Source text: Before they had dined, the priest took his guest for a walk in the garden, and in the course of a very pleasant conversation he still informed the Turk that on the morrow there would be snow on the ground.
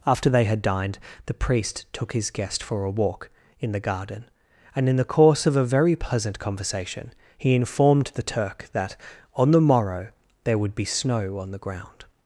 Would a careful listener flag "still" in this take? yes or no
yes